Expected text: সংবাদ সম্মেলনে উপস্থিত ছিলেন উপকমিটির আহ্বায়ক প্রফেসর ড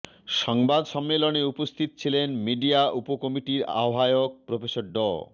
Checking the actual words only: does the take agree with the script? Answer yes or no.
no